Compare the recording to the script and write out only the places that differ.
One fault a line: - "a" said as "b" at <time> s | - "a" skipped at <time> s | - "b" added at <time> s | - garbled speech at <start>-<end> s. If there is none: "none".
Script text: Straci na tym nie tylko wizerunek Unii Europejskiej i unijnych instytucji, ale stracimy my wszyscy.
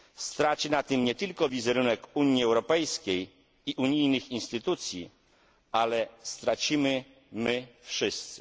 none